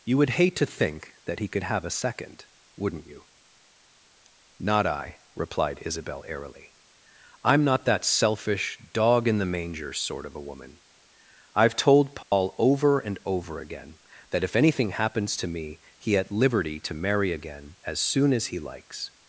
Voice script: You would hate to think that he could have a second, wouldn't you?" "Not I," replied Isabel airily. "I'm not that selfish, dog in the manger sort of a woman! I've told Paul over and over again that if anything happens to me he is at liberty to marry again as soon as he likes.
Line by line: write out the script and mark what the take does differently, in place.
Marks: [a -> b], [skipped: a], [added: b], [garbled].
You would hate to think that he could have a second, wouldn't you?" "Not I," replied Isabel airily. "I'm not that selfish, dog in the manger sort of a woman! I've told Paul over and over again that if anything happens to me he [skipped: is] at liberty to marry again as soon as he likes.